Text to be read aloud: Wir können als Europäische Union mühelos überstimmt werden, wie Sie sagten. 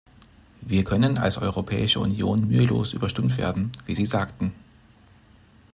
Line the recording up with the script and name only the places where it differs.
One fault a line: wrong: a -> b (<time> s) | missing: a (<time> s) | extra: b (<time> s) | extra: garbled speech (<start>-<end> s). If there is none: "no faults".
no faults